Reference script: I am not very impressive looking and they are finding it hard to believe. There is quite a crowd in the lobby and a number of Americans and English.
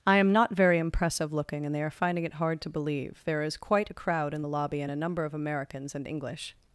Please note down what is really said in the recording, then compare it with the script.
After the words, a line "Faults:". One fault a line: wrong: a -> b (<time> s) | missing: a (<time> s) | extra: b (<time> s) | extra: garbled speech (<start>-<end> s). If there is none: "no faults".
I am not very impressive looking and they are finding it hard to believe. There is quite a crowd in the lobby and a number of Americans and English.
Faults:
no faults